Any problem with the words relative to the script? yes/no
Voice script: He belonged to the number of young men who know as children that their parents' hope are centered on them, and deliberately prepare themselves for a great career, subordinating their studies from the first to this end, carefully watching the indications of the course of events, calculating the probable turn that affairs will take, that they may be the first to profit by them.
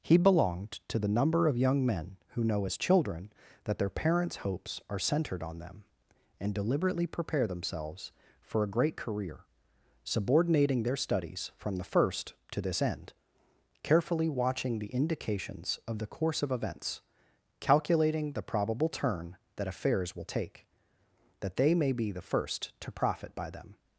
yes